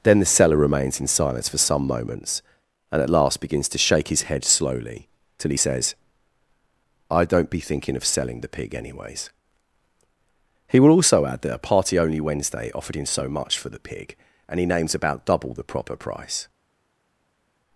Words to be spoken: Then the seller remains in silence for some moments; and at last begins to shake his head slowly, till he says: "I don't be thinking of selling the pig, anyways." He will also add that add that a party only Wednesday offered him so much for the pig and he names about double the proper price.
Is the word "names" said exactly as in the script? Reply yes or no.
yes